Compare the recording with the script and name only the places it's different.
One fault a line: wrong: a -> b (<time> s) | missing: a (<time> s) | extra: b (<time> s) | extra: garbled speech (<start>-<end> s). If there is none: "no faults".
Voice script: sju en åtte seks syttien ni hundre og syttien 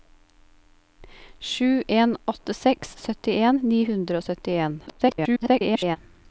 extra: garbled speech (4.9-6.0 s)